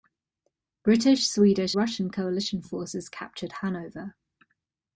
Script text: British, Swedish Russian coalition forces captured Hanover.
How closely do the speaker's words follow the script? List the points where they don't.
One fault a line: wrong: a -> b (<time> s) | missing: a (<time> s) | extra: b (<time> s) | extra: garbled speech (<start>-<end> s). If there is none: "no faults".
no faults